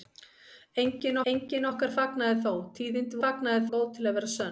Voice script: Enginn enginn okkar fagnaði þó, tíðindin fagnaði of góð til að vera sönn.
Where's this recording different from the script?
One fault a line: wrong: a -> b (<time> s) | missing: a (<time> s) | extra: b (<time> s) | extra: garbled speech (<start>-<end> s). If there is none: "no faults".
no faults